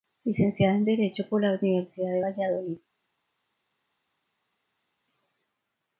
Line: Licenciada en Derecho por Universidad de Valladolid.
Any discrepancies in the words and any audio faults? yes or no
yes